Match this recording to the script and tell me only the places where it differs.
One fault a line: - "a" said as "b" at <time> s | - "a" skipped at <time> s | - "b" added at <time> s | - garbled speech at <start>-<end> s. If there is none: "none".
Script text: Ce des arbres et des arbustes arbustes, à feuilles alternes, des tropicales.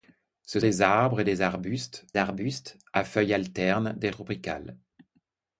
none